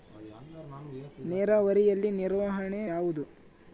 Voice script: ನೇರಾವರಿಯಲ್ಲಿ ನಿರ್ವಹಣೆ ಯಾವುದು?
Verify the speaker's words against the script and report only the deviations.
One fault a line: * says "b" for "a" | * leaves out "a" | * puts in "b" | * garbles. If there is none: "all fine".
all fine